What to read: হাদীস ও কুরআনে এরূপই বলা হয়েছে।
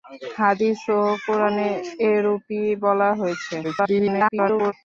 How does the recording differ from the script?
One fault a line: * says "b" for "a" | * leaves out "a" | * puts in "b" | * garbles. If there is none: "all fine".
* garbles